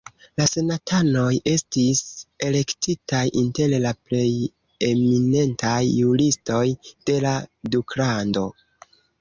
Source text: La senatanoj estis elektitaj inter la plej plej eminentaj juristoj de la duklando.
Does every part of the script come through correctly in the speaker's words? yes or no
no